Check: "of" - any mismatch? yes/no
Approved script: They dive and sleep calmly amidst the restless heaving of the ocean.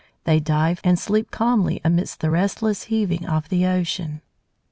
no